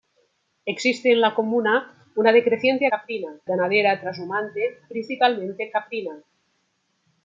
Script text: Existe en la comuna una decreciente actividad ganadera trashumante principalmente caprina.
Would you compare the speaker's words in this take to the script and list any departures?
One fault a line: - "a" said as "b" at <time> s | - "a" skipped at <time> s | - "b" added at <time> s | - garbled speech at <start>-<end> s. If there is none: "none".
- "actividad" said as "caprina" at 2.9 s